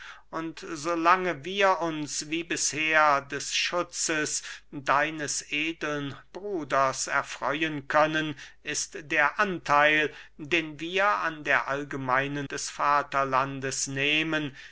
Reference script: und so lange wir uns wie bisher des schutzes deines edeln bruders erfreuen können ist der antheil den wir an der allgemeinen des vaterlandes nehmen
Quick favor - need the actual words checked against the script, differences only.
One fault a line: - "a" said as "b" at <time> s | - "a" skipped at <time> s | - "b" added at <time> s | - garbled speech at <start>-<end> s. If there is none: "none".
none